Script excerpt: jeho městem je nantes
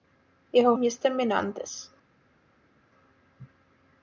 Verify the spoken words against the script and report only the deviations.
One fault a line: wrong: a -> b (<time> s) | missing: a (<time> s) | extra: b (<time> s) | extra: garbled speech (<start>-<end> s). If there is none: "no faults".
no faults